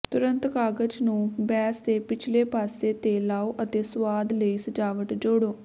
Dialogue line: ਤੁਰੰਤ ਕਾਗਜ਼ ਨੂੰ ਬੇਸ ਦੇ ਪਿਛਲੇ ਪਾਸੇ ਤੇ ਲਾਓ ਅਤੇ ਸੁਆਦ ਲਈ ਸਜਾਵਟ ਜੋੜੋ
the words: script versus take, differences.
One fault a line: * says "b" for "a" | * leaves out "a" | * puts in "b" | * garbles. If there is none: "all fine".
all fine